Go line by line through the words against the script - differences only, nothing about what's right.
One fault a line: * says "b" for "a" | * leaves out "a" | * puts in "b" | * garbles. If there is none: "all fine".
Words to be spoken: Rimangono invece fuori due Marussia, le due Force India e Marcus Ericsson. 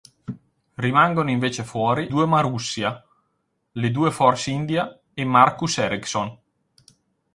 all fine